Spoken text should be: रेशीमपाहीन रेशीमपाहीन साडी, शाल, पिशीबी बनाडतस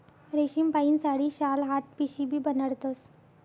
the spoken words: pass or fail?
fail